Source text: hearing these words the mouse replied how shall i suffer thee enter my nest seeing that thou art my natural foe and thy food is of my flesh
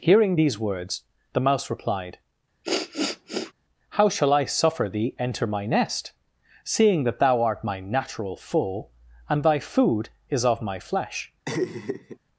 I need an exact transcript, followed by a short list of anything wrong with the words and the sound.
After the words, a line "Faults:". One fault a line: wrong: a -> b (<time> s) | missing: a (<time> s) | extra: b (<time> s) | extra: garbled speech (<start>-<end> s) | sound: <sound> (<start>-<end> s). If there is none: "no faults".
hearing these words the mouse replied how shall i suffer thee enter my nest seeing that thou art my natural foe and thy food is of my flesh
Faults:
sound: sniff (2.6-3.5 s)
sound: laugh (11.5-12.2 s)